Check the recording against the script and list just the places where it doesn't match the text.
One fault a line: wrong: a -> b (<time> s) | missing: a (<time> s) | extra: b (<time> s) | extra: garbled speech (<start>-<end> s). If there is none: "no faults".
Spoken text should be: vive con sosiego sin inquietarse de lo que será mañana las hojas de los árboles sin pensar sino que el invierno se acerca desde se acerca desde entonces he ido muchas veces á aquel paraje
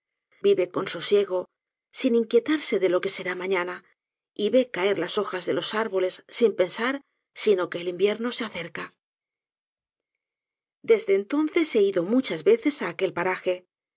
extra: y ve caer (4.3 s)
missing: se acerca desde (11.2 s)